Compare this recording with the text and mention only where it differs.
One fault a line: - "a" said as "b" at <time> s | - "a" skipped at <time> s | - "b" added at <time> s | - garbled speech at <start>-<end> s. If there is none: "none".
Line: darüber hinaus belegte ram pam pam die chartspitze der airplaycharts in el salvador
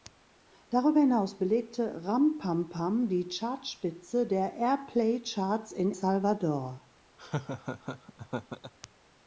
- "el" skipped at 5.9 s